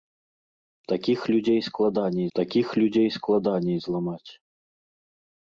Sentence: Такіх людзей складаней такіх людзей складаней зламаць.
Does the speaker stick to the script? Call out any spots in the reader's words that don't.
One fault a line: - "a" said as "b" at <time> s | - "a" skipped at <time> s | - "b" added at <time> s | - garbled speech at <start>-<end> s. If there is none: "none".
none